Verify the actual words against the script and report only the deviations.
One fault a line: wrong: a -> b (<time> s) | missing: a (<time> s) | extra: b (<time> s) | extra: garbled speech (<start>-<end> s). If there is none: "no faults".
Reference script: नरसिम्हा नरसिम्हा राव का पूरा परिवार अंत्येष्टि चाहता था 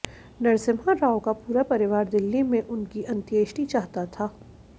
missing: नरसिम्हा (0.9 s)
extra: दिल्ली में उनकी (2.1 s)